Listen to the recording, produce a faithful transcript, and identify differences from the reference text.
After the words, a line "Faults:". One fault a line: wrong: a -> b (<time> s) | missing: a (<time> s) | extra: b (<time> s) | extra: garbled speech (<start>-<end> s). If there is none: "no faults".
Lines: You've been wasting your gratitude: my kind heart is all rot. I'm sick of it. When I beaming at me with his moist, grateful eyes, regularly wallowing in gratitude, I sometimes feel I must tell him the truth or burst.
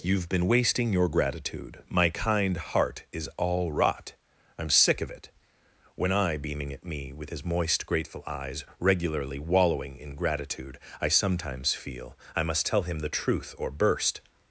You've been wasting your gratitude: my kind heart is all rot. I'm sick of it. When I beaming at me with his moist, grateful eyes, regularly wallowing in gratitude, I sometimes feel I must tell him the truth or burst.
Faults:
no faults